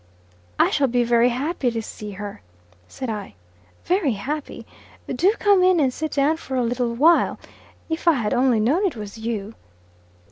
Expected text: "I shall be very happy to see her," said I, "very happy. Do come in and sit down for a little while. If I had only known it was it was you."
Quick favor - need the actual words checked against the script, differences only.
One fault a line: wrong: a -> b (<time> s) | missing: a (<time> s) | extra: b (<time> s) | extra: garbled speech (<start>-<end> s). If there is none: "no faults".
missing: it was (9.2 s)